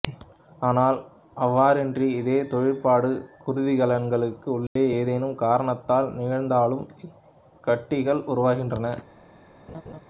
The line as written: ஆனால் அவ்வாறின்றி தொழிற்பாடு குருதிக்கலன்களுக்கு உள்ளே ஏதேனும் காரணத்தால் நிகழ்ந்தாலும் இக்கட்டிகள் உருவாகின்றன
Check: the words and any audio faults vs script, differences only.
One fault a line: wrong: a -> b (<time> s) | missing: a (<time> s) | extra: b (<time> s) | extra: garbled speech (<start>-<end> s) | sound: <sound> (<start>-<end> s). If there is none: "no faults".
extra: இதே (2.2 s)
sound: dropout (4.7-4.8 s)
sound: laugh (9.7-10.0 s)